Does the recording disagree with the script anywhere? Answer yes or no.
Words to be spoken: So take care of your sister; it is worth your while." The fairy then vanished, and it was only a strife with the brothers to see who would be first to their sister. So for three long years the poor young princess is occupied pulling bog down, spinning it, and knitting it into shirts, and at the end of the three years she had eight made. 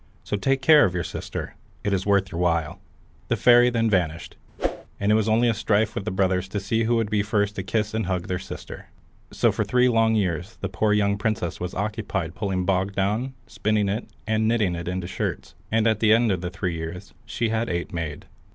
yes